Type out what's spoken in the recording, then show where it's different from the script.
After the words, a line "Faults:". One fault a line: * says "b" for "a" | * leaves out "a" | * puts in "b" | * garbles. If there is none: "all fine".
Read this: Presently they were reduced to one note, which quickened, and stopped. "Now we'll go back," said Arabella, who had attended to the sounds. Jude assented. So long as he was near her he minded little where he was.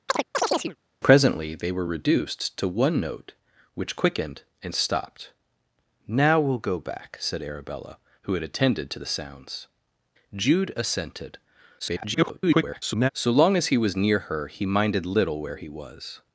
Presently they were reduced to one note, which quickened, and stopped. "Now we'll go back," said Arabella, who had attended to the sounds. Jude assented. [garbled] So long as he was near her he minded little where he was.
Faults:
* garbles